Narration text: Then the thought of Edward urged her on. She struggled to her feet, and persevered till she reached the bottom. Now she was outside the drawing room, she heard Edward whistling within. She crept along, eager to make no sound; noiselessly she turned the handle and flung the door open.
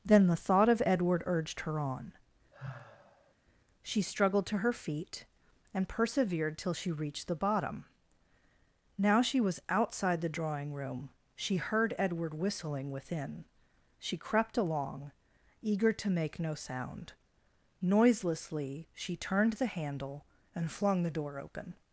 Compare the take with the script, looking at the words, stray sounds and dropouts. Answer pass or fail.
fail